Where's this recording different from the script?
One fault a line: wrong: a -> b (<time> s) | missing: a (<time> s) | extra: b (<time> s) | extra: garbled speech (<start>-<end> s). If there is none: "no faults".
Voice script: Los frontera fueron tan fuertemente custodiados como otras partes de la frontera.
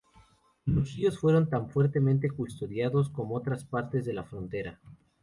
wrong: frontera -> ríos (0.9 s)